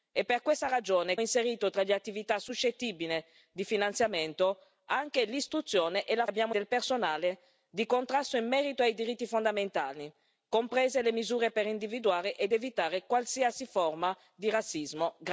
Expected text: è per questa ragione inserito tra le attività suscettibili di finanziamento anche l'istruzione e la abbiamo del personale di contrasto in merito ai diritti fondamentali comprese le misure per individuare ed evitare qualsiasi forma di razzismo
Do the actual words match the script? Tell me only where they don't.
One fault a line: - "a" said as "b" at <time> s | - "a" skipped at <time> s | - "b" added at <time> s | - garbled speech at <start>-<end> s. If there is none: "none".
none